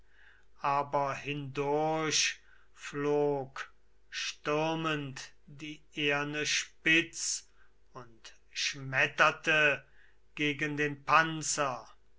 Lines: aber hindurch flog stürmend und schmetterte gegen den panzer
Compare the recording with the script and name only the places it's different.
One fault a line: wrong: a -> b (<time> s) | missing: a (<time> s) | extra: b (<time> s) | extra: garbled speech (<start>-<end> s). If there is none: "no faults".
extra: die eherne spitz (5.5 s)